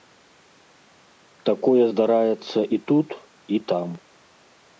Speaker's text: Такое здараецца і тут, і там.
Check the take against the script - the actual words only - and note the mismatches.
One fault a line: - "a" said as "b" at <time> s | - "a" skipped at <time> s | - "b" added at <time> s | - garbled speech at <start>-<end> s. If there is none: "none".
none